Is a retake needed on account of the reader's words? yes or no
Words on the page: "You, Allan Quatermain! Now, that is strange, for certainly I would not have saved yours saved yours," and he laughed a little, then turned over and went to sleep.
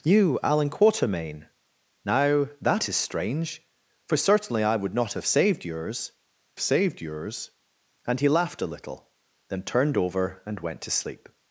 no